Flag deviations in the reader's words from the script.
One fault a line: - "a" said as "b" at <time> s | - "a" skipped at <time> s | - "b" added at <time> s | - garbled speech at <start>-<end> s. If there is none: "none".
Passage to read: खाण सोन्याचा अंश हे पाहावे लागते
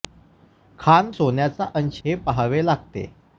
none